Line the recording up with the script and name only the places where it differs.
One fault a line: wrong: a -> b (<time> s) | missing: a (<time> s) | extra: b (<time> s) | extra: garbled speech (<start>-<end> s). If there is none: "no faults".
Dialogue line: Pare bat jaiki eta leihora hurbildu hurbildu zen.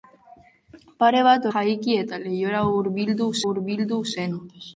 no faults